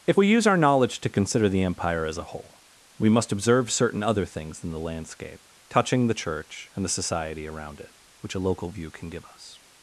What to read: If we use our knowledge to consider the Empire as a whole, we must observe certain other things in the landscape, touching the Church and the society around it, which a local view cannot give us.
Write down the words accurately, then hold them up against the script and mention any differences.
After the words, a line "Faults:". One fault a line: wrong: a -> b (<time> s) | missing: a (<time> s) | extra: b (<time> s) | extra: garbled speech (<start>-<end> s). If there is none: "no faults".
If we use our knowledge to consider the Empire as a whole, we must observe certain other things in the landscape, touching the Church and the society around it, which a local view can give us.
Faults:
wrong: cannot -> can (8.9 s)